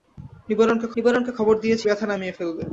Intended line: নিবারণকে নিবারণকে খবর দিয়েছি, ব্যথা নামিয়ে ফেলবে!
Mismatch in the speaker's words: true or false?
false